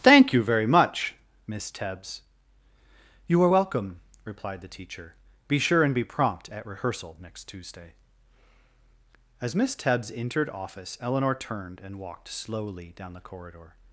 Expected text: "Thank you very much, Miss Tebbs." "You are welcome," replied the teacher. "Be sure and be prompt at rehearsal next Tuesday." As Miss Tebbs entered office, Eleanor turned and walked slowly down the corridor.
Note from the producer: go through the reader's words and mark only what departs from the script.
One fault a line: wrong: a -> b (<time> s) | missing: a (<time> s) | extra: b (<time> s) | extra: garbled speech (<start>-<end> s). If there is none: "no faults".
no faults